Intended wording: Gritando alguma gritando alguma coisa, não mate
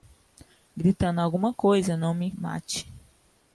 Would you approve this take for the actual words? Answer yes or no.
no